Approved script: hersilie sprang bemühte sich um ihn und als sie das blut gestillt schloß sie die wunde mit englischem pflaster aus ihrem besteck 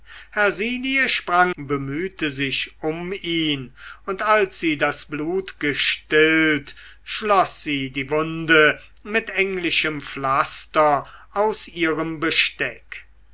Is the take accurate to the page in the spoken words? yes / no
yes